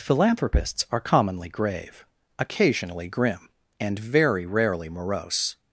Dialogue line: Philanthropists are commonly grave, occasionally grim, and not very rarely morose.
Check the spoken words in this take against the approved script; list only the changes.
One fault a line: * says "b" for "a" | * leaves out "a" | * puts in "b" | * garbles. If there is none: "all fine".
* leaves out "not"